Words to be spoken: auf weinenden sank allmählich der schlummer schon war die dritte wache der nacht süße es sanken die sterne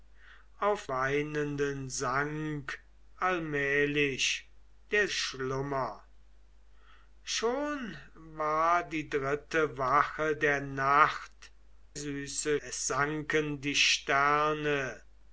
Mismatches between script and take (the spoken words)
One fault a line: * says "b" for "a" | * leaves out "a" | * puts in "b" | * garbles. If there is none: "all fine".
all fine